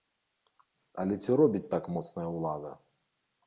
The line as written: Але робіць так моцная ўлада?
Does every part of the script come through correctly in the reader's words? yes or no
no